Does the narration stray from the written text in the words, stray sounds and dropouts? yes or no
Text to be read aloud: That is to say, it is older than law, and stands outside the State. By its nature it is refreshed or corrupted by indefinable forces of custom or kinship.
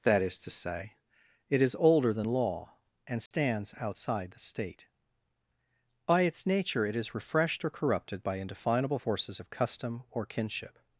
yes